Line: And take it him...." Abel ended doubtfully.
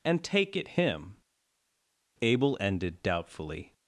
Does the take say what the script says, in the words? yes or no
yes